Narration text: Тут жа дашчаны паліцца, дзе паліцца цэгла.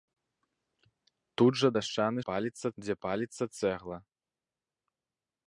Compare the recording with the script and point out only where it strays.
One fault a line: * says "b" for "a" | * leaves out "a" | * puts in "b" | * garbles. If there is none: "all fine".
all fine